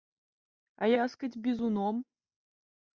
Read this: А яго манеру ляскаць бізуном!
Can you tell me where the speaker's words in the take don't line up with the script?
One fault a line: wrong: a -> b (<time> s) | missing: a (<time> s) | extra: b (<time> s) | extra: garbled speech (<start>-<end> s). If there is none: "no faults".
missing: яго манеру (0.9 s)